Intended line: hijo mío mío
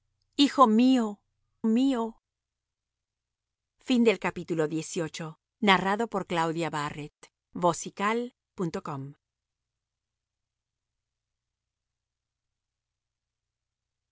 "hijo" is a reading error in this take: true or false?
false